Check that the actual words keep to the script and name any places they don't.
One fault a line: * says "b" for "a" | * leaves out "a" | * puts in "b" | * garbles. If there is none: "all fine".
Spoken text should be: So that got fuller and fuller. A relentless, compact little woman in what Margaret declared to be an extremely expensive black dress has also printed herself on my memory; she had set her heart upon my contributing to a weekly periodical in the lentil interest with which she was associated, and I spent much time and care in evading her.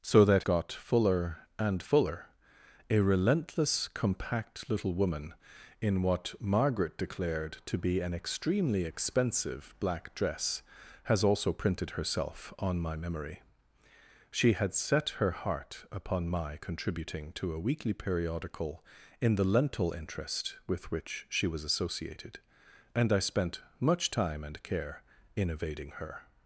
all fine